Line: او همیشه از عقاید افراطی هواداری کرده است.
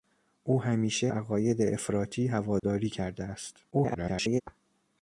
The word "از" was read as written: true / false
false